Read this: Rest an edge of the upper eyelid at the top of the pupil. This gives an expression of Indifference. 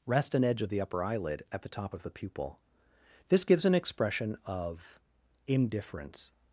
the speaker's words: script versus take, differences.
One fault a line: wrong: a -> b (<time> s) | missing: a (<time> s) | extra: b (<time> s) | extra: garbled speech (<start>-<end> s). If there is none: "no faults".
no faults